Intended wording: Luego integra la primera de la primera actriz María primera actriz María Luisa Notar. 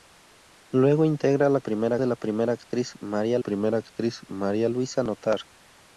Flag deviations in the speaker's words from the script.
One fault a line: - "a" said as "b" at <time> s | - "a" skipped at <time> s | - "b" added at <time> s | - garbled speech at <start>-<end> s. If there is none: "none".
none